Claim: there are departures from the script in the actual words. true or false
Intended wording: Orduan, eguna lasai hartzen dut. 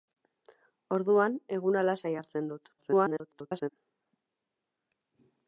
true